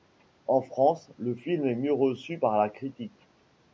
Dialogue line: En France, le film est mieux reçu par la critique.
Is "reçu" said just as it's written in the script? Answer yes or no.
yes